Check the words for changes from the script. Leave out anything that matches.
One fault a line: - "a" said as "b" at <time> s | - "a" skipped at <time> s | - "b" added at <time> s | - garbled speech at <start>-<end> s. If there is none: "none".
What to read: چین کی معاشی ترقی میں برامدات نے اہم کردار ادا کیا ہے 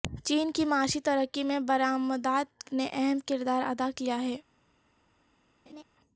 none